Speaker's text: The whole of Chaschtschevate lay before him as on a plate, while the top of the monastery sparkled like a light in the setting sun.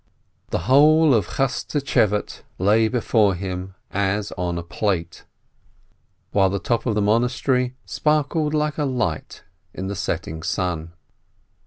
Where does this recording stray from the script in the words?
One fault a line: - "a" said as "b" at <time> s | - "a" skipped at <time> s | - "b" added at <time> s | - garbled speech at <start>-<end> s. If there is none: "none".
none